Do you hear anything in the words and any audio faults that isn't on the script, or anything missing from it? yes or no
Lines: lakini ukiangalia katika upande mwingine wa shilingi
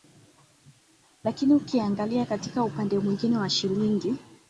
no